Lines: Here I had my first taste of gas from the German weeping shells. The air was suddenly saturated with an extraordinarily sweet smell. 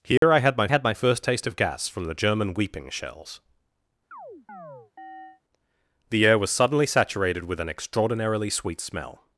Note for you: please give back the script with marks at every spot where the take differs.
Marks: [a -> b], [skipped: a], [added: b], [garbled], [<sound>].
Here [dropout] I had my [added: had my] first taste of gas from the German weeping shells. [chirp] The air was suddenly saturated with an extraordinarily sweet smell.